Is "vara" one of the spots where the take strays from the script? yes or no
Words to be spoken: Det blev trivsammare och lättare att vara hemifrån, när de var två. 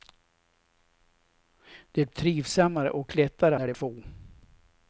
yes